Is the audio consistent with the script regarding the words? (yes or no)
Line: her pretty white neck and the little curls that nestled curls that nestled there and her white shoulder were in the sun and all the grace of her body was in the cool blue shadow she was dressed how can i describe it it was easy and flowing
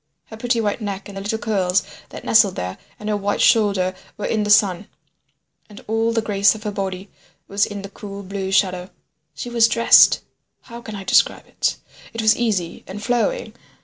no